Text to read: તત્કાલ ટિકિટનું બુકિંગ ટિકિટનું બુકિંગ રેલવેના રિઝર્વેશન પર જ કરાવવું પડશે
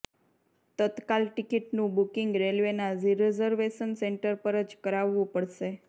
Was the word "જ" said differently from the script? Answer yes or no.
no